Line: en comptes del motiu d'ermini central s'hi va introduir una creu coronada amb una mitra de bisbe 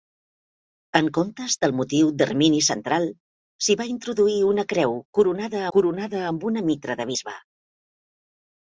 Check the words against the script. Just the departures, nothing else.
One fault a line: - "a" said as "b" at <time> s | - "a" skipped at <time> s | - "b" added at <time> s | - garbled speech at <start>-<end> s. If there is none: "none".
- "coronada" added at 5.8 s